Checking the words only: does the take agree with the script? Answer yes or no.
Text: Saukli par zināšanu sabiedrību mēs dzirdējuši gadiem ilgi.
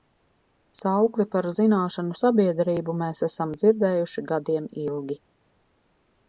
no